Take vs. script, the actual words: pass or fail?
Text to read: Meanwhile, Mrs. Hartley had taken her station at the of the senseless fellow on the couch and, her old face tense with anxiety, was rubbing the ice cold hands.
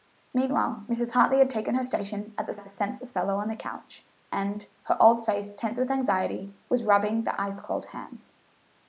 pass